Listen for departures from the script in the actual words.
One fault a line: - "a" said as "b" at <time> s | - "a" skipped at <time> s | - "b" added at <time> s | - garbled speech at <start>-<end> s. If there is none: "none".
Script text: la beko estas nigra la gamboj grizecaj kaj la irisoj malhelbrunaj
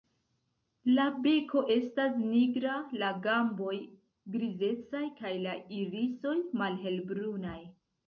none